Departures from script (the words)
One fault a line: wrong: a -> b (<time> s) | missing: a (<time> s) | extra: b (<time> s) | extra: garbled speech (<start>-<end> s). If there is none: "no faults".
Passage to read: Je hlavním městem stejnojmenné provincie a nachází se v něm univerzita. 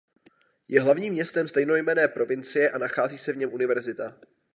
no faults